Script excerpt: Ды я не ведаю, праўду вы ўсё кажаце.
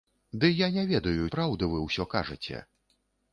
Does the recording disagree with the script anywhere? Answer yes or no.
no